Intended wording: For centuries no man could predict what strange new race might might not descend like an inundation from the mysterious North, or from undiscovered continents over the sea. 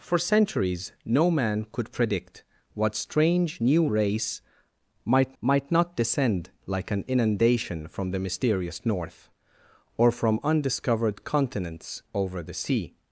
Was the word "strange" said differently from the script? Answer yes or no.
no